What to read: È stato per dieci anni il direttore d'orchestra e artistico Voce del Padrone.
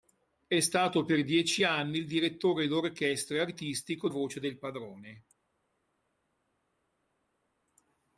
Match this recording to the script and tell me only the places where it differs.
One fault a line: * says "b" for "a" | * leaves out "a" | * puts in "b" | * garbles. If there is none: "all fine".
all fine